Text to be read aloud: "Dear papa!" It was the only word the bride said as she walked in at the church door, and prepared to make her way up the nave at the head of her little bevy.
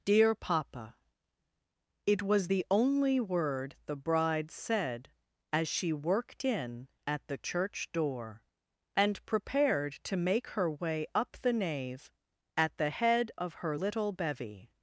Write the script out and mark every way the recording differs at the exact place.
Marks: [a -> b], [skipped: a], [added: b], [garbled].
"Dear papa!" It was the only word the bride said as she [walked -> worked] in at the church door, and prepared to make her way up the nave at the head of her little bevy.